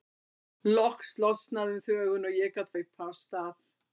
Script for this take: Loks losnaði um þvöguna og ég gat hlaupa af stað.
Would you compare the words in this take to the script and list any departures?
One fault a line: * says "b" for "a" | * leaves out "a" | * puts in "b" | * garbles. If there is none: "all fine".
all fine